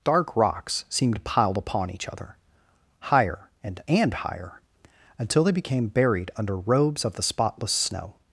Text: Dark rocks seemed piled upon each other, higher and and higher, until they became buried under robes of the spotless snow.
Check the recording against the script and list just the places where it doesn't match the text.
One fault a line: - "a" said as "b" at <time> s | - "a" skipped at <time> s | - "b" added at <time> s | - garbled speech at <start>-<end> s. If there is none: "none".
none